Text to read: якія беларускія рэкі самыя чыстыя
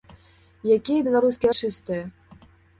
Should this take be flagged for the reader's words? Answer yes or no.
yes